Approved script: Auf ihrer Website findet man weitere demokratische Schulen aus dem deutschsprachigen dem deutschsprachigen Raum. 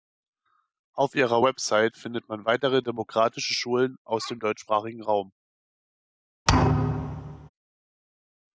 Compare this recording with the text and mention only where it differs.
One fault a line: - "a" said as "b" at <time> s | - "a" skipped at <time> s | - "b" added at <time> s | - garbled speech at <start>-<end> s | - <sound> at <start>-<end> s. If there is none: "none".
- "dem deutschsprachigen" skipped at 5.0 s
- thud at 6.5-7.5 s